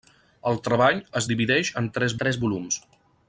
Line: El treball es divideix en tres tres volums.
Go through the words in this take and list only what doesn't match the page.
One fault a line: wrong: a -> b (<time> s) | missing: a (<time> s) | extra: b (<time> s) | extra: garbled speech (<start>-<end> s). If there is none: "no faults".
no faults